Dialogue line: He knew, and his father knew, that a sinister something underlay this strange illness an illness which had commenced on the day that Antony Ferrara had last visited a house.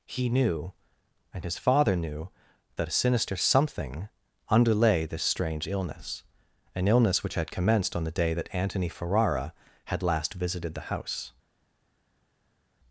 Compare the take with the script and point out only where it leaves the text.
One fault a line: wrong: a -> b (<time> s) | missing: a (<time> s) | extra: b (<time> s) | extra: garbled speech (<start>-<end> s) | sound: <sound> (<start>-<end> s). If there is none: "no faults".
wrong: a -> the (10.7 s)